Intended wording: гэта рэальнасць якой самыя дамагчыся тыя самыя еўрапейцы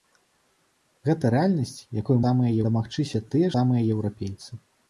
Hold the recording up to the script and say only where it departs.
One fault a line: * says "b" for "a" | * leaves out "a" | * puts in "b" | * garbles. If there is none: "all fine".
all fine